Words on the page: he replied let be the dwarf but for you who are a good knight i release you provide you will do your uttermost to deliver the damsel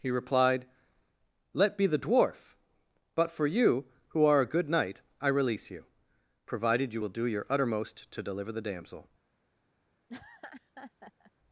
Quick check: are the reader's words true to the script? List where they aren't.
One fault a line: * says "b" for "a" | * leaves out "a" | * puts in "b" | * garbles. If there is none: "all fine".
* says "provided" for "provide"